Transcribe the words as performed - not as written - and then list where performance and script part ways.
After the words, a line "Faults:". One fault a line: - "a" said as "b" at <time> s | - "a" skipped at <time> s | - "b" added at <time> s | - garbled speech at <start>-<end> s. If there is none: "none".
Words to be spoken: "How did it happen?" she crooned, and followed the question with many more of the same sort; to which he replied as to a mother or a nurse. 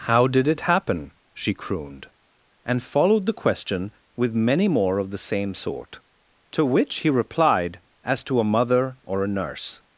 "How did it happen?" she crooned, and followed the question with many more of the same sort; to which he replied as to a mother or a nurse.
Faults:
none